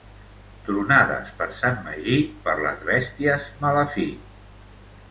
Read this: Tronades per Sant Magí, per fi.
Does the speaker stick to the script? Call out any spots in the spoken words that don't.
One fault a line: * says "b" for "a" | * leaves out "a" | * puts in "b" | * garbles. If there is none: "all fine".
* puts in "les bèsties mala"